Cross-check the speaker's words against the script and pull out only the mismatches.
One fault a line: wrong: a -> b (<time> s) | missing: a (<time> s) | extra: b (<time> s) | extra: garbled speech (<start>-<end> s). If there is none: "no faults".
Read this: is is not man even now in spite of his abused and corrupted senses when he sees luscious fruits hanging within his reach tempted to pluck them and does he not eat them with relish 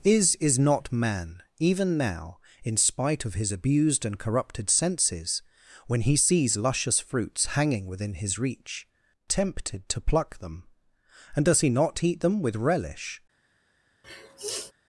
no faults